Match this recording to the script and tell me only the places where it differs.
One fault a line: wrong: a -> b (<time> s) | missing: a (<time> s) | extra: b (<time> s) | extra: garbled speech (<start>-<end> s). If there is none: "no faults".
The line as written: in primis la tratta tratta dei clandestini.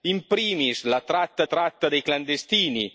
no faults